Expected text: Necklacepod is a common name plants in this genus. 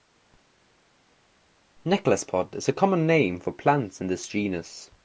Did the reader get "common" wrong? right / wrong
right